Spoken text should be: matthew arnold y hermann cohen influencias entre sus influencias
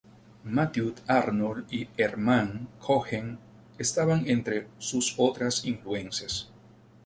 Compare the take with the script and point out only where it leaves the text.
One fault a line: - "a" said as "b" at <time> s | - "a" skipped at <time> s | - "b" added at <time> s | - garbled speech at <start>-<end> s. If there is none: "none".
- "influencias" said as "estaban" at 3.8 s
- "otras" added at 5.2 s